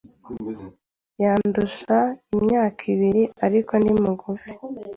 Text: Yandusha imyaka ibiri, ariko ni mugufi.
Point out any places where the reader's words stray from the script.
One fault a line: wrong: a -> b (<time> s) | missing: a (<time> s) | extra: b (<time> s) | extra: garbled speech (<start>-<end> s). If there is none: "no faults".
no faults